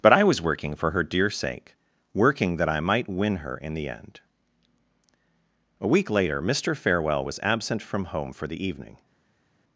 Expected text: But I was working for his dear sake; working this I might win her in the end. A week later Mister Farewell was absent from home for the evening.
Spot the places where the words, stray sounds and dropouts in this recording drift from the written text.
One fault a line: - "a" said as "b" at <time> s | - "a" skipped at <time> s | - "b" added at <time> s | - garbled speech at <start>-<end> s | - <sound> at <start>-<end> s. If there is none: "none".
- "his" said as "her" at 0.9 s
- "this" said as "that" at 2.6 s